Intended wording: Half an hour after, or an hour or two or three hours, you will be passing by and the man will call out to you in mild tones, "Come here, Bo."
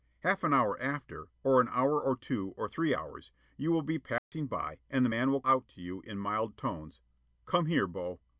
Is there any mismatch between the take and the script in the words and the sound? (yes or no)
yes